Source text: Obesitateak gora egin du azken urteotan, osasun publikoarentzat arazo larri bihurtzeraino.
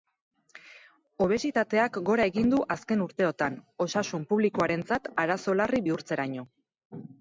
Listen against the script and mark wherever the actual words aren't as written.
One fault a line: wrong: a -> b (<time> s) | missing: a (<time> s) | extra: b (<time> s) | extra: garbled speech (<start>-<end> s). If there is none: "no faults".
no faults